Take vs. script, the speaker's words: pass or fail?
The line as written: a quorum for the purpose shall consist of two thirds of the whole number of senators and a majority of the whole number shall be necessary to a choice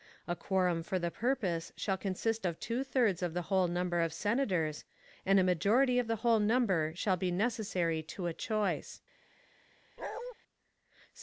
pass